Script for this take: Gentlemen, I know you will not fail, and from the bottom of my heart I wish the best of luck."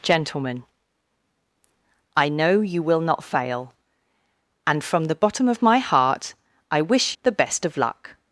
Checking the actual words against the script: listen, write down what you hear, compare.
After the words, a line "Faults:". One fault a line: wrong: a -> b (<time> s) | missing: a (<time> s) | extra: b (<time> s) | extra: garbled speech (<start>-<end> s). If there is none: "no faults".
Gentlemen, I know you will not fail, and from the bottom of my heart I wish the best of luck."
Faults:
no faults